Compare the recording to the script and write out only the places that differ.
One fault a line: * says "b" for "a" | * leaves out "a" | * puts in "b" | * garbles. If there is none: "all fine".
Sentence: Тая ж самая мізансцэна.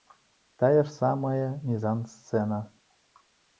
all fine